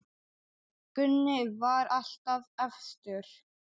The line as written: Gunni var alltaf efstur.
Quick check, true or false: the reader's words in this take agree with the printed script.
true